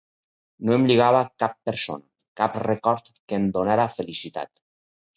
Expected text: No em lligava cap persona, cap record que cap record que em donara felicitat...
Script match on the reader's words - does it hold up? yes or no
no